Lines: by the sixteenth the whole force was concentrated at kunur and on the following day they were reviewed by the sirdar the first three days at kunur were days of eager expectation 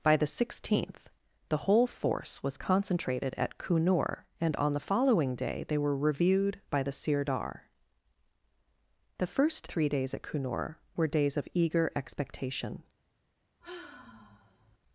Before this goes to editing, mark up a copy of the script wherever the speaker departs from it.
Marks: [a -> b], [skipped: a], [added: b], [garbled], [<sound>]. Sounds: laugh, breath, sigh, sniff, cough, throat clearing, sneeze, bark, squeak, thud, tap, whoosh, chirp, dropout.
by the sixteenth the whole force was concentrated at kunur and on the following day they were reviewed by the sirdar the first three days at kunur were days of eager expectation [sigh]